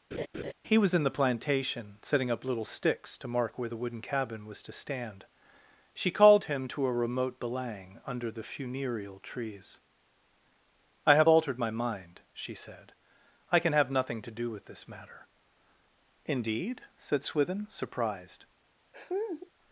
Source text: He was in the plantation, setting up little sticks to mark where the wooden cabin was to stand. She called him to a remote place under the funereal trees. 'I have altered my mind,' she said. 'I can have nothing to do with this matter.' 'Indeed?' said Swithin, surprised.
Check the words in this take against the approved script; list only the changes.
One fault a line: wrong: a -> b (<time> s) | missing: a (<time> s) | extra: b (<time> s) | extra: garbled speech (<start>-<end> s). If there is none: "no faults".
wrong: place -> belang (7.4 s)